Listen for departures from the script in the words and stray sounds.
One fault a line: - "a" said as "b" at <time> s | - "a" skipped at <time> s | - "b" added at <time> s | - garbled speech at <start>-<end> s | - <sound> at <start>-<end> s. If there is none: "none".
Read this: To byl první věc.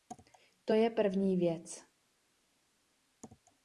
- "byl" said as "je" at 0.7 s